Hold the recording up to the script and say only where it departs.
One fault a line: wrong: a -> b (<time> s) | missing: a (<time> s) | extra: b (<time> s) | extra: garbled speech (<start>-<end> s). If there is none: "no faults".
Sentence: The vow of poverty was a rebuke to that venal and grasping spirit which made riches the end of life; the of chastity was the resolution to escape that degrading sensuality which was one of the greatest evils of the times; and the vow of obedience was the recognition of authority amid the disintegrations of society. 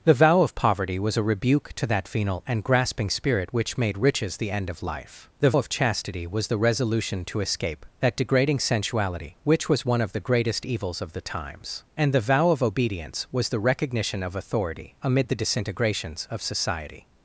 no faults